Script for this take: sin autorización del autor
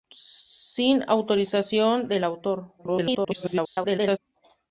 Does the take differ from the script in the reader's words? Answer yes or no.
yes